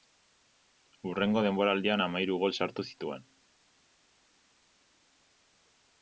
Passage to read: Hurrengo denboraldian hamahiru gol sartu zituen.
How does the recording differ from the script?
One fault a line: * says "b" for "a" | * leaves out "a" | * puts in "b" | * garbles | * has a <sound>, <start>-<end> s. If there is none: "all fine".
all fine